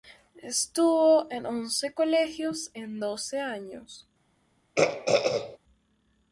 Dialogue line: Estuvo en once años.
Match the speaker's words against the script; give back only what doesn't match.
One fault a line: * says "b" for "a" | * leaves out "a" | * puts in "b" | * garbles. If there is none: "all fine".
* puts in "colegios en doce"